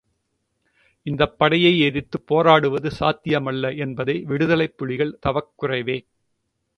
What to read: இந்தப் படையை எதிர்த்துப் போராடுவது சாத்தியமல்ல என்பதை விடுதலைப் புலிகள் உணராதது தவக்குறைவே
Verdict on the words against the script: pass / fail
fail